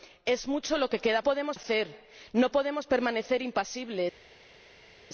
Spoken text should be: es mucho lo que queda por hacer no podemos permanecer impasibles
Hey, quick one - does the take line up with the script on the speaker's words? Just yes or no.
no